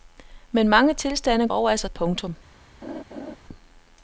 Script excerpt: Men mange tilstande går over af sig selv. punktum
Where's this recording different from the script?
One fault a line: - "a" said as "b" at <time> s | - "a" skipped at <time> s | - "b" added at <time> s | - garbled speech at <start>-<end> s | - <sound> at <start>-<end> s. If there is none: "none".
- "går" skipped at 1.5 s
- "selv" skipped at 1.9 s
- laugh at 2.8-3.4 s